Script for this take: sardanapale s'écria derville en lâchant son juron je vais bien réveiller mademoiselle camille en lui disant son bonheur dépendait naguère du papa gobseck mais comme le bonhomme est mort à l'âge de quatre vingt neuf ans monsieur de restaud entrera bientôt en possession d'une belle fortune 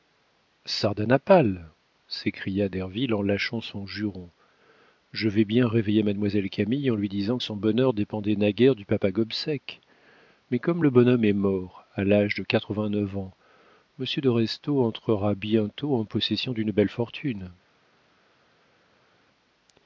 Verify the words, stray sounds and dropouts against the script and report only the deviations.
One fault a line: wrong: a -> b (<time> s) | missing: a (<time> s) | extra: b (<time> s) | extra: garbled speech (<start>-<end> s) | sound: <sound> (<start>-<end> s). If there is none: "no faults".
no faults